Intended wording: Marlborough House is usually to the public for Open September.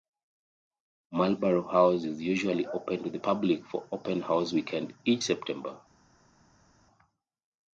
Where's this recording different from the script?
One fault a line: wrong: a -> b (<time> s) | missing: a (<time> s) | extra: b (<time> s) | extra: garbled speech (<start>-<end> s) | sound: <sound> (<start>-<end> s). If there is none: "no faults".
extra: open (2.6 s)
extra: House Weekend each (4.2 s)